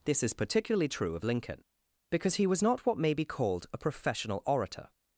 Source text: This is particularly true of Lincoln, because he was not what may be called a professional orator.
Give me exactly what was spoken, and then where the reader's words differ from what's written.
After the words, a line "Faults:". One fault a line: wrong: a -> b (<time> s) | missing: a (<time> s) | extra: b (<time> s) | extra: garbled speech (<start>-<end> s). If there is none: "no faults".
This is particularly true of Lincoln, because he was not what may be called a professional orator.
Faults:
no faults